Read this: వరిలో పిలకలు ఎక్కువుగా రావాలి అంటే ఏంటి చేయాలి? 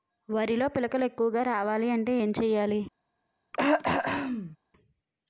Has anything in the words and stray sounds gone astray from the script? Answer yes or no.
yes